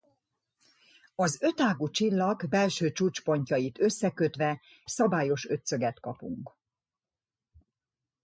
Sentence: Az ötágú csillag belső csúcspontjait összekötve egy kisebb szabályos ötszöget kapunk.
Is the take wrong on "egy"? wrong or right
wrong